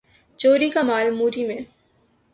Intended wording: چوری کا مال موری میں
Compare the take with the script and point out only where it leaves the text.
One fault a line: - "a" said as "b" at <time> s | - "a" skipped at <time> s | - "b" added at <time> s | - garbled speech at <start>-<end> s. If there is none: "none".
none